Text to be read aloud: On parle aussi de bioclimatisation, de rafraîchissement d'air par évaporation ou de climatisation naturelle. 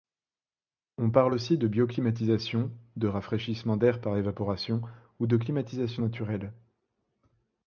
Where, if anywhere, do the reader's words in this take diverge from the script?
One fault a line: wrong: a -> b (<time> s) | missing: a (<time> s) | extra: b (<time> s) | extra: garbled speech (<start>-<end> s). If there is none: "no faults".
no faults